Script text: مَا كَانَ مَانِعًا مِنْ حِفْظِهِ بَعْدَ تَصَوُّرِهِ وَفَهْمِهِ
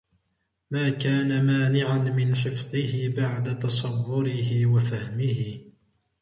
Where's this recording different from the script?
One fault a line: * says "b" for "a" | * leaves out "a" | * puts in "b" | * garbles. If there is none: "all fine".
all fine